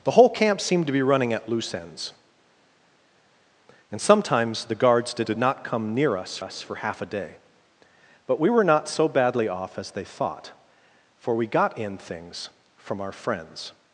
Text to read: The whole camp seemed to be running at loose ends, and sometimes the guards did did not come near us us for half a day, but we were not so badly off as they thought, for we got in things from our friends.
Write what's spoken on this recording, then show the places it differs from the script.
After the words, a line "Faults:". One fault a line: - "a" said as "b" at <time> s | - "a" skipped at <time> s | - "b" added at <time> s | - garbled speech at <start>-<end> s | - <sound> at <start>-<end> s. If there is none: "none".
The whole camp seemed to be running at loose ends, and sometimes the guards did did not come near us us for half a day, but we were not so badly off as they thought, for we got in things from our friends.
Faults:
none